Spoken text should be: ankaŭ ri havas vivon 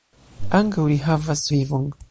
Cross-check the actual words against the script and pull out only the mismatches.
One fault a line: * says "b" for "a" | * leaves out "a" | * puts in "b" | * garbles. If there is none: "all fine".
all fine